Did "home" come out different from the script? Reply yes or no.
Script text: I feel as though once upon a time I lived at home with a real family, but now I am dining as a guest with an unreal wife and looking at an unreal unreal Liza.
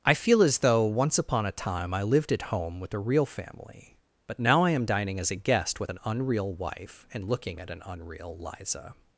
no